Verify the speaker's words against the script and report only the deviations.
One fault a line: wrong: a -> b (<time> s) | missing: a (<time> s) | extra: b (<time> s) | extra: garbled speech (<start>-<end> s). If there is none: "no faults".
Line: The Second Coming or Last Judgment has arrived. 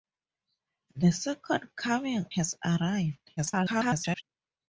missing: or Last Judgment (2.2 s)
extra: garbled speech (3.4-4.2 s)